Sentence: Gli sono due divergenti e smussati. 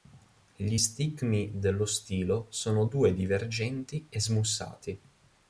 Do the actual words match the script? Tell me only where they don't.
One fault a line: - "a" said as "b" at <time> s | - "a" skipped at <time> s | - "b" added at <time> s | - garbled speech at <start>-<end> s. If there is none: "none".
- "stigmi dello stilo" added at 0.8 s